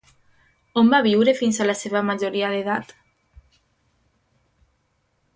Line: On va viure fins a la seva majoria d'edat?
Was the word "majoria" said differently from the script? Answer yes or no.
no